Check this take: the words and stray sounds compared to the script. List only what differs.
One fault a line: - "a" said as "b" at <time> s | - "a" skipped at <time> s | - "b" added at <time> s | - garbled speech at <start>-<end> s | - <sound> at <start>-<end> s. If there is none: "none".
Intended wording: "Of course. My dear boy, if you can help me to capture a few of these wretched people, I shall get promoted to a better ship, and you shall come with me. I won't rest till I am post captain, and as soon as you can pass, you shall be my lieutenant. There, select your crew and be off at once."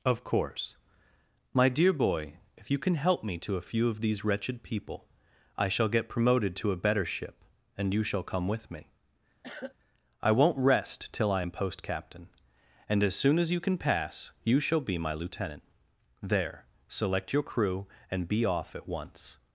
- "capture" skipped at 3.6 s
- cough at 9.4-9.8 s